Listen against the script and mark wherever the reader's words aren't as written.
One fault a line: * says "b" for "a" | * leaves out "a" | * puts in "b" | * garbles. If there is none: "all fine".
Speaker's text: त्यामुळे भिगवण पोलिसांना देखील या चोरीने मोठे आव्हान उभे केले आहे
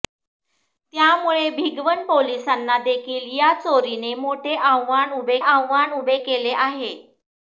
* puts in "आव्हान उभे"